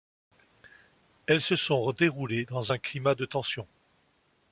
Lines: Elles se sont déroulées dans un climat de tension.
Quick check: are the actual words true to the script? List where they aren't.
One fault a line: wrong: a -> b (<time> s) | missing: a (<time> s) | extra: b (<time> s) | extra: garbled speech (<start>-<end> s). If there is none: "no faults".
no faults